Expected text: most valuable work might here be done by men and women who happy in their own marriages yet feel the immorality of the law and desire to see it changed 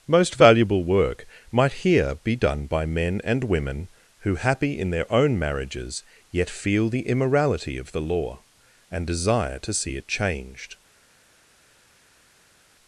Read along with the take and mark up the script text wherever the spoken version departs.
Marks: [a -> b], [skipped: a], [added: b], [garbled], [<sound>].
most valuable work might here be done by men and women who happy in their own marriages yet feel the immorality of the law and desire to see it changed